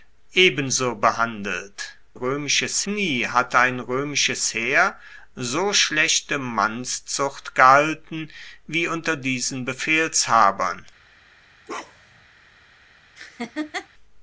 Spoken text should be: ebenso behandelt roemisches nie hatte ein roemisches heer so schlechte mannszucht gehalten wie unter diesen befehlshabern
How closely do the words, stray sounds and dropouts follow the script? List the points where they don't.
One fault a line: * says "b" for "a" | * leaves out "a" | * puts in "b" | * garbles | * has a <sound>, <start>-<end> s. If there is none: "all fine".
* has a bark, 11.7-12.3 s
* has a laugh, 13.2-13.9 s